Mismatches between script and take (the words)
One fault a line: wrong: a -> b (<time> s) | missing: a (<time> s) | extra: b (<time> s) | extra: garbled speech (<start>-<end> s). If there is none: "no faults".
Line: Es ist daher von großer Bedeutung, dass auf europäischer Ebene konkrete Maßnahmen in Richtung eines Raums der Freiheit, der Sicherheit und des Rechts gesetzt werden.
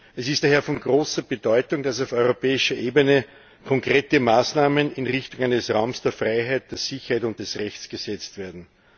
no faults